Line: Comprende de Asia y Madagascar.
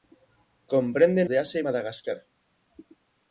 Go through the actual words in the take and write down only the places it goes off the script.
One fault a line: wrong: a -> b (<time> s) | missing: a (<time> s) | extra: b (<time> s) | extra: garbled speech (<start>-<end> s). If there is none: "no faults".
no faults